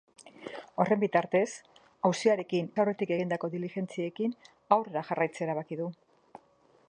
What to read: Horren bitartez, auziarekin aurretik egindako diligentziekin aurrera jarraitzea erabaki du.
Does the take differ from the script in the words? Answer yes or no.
no